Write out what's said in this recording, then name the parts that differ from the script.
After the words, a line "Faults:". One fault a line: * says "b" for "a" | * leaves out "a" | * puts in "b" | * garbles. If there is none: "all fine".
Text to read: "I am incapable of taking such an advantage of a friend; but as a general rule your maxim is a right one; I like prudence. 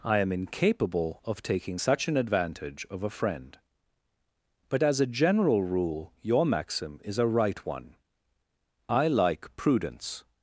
"I am incapable of taking such an advantage of a friend; but as a general rule your maxim is a right one; I like prudence.
Faults:
all fine